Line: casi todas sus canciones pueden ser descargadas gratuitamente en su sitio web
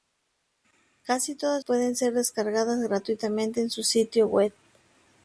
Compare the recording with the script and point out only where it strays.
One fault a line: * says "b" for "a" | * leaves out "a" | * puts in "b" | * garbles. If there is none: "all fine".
* leaves out "sus canciones"